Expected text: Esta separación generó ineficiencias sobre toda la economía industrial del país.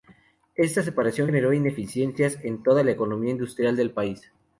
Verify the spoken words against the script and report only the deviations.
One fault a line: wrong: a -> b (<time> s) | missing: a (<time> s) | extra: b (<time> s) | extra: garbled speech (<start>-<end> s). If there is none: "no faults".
wrong: sobre -> en (2.4 s)